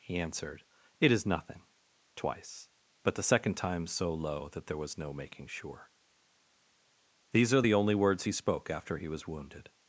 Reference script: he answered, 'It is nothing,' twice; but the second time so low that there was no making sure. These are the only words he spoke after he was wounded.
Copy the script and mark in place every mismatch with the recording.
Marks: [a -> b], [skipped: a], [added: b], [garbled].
he answered, 'It is nothing,' twice; but the second time so low that there was no making sure. These are the only words he spoke after he was wounded.